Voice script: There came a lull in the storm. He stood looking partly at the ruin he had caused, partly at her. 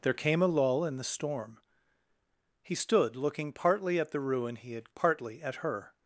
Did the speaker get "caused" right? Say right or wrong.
wrong